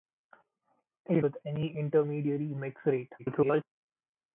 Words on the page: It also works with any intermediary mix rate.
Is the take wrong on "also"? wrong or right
wrong